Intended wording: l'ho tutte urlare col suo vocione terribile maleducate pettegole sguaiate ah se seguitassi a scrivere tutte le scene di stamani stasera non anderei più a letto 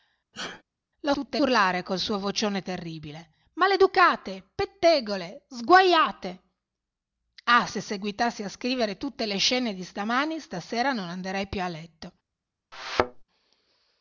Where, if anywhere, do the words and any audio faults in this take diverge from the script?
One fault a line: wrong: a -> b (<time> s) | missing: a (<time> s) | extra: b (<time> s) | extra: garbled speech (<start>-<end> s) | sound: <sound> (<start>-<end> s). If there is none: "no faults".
sound: sneeze (0.3-0.6 s)
sound: thud (12.7-13.2 s)